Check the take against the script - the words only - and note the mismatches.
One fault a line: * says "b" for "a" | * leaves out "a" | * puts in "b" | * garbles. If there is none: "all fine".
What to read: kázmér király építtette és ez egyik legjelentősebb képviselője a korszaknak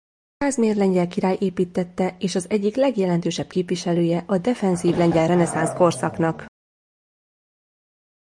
* puts in "lengyel"
* says "az" for "ez"
* puts in "defenzív lengyel reneszánsz"